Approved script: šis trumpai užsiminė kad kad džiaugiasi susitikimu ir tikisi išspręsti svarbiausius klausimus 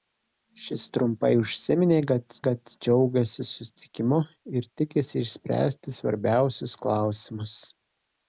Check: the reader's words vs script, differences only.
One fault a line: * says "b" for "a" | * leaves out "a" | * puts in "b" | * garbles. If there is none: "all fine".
all fine